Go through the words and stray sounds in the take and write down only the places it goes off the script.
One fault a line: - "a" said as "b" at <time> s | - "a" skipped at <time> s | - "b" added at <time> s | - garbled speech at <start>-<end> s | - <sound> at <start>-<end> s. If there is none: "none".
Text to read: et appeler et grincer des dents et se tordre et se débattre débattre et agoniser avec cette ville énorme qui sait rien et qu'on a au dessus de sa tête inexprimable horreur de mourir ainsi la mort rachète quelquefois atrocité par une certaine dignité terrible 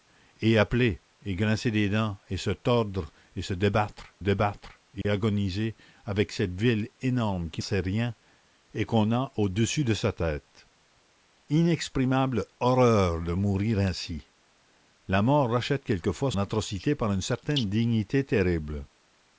- dropout at 5.0-5.0 s